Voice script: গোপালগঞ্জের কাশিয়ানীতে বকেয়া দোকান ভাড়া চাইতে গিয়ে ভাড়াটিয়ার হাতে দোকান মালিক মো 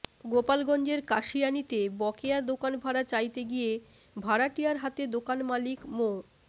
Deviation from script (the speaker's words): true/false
false